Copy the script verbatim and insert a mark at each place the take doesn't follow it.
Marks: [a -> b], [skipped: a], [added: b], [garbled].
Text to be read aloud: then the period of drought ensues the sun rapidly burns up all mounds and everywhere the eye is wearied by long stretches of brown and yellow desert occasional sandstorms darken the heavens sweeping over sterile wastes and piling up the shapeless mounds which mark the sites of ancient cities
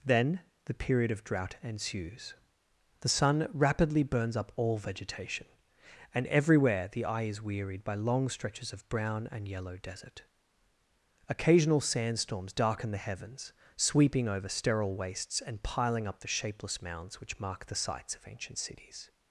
then the period of drought ensues the sun rapidly burns up all [mounds -> vegetation] and everywhere the eye is wearied by long stretches of brown and yellow desert occasional sandstorms darken the heavens sweeping over sterile wastes and piling up the shapeless mounds which mark the sites of ancient cities